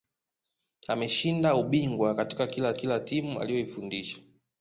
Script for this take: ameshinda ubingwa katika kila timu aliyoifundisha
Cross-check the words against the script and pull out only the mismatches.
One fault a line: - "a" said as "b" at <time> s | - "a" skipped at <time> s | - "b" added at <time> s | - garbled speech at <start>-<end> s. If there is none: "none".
- "kila" added at 2.7 s